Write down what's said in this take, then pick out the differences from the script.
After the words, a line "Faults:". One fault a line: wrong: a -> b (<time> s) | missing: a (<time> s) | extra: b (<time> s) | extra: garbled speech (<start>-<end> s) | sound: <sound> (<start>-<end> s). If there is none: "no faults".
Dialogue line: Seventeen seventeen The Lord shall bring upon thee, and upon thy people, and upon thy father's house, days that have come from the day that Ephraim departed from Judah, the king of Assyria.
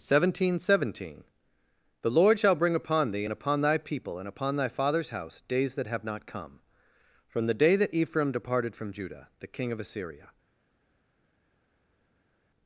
Seventeen seventeen The Lord shall bring upon thee, and upon thy people, and upon thy father's house, days that have not come from the day that Ephraim departed from Judah, the king of Assyria.
Faults:
extra: not (6.0 s)